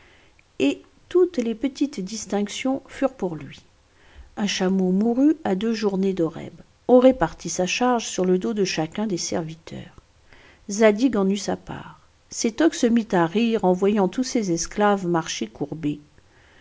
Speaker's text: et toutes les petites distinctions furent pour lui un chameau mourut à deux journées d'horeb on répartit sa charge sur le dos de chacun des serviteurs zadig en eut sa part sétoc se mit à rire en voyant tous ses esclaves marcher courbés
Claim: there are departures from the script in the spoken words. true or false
false